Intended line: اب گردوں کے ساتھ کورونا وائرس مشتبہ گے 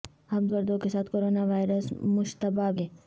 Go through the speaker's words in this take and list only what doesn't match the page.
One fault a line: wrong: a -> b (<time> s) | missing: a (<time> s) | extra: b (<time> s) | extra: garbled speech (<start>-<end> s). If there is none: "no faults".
no faults